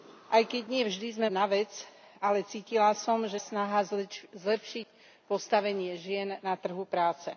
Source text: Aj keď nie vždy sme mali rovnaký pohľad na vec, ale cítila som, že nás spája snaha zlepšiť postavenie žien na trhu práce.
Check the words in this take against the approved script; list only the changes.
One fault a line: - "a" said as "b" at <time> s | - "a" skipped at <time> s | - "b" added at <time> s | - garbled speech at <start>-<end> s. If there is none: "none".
- "mali rovnaký pohľad" skipped at 1.3 s
- "nás spája" skipped at 3.4 s